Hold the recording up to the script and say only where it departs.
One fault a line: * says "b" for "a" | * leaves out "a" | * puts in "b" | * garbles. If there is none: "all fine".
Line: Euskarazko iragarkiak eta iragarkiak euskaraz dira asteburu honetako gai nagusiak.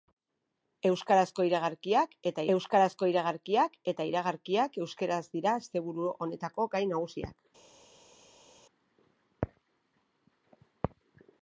* puts in "euskarazko iragarkiak eta"